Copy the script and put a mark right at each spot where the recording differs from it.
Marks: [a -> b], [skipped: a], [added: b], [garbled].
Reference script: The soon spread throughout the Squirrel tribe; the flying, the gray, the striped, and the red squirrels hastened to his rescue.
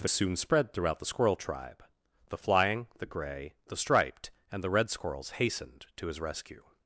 The soon spread throughout the Squirrel tribe; the flying, the gray, the striped, and the red squirrels hastened to his rescue.